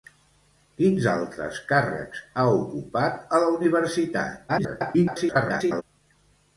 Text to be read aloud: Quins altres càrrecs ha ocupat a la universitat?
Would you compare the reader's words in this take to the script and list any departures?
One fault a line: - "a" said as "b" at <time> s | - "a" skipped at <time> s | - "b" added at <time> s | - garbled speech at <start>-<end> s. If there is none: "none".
- garbled speech at 4.5-5.8 s